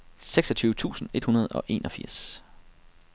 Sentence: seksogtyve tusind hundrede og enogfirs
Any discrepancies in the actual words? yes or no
yes